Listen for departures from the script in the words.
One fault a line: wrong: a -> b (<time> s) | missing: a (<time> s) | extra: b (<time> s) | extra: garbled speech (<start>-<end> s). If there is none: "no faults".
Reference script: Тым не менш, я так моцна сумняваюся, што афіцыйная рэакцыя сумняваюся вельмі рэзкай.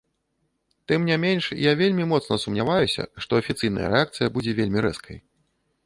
wrong: так -> вельмі (1.8 s)
wrong: сумняваюся -> будзе (4.4 s)